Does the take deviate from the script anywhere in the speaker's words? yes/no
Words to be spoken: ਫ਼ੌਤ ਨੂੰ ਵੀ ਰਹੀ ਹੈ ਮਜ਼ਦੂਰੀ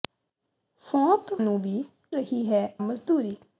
no